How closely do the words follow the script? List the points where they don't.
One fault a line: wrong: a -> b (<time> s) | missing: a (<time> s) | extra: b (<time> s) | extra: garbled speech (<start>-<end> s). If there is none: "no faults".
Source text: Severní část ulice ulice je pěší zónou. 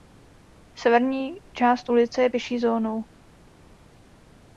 missing: ulice (2.2 s)